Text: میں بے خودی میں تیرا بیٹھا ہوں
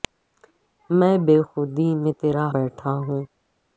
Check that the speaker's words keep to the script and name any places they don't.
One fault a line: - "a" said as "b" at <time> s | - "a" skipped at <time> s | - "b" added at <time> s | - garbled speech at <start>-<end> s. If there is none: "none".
none